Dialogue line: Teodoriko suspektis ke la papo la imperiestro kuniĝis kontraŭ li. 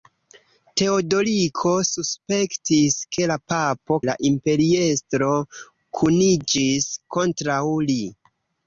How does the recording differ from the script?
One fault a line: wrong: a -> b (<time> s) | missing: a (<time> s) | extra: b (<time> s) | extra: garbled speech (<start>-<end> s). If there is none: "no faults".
no faults